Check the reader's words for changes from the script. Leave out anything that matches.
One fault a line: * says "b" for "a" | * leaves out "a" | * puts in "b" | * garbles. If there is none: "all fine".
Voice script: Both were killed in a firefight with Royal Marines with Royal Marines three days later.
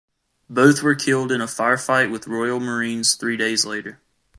* leaves out "with Royal Marines"